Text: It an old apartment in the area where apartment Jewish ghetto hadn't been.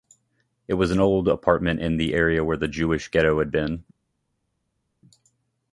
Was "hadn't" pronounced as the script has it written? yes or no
no